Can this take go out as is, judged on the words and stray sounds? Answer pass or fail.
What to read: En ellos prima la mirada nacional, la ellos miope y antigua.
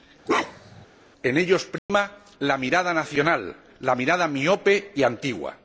fail